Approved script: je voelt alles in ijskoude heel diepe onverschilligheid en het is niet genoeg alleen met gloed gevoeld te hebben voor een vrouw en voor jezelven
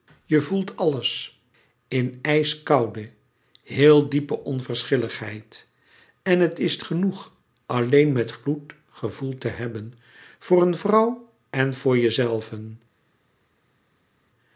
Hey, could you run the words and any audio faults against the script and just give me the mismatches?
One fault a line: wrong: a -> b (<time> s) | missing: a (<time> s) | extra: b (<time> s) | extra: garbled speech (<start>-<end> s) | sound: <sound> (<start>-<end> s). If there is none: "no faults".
missing: niet (6.8 s)